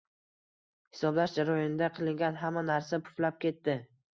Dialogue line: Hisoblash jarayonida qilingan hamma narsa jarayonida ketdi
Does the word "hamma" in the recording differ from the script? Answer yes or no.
no